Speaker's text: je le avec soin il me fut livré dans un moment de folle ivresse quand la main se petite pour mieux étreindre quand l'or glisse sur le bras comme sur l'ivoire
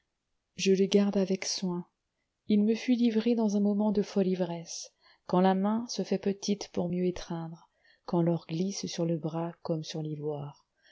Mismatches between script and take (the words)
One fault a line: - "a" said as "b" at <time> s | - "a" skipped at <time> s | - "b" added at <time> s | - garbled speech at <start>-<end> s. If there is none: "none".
- "garde" added at 0.9 s
- "fait" added at 6.0 s